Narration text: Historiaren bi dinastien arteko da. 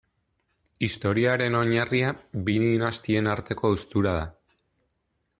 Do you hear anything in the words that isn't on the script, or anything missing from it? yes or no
yes